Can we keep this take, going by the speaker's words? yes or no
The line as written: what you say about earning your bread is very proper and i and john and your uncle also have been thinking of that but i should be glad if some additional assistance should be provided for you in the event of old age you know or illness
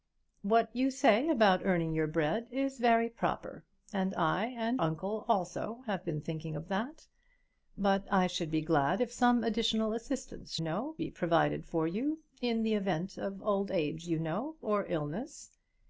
no